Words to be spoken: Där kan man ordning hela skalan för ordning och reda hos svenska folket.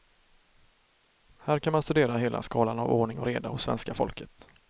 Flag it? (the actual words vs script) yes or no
yes